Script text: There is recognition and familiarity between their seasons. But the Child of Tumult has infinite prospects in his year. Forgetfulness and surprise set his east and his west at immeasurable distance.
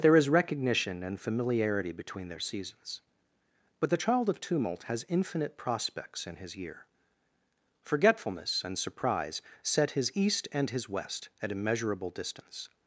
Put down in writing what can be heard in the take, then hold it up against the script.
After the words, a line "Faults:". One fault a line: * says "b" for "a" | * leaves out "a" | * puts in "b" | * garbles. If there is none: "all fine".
There is recognition and familiarity between their seasons. But the Child of Tumult has infinite prospects in his year. Forgetfulness and surprise set his east and his west at immeasurable distance.
Faults:
all fine